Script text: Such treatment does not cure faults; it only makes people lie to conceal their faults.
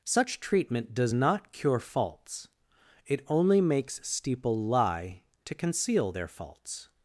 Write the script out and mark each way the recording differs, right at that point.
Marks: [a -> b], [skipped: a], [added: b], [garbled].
Such treatment does not cure faults; it only makes [people -> steeple] lie to conceal their faults.